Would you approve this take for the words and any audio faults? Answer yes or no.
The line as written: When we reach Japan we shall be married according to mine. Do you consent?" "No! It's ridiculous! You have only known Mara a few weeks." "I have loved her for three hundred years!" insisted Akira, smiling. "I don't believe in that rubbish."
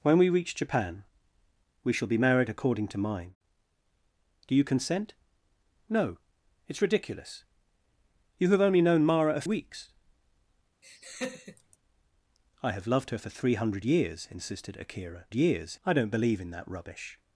no